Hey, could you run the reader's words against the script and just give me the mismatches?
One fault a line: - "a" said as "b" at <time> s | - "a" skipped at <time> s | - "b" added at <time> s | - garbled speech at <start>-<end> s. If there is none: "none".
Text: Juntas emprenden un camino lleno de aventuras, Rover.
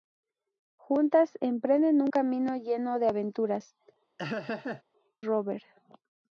none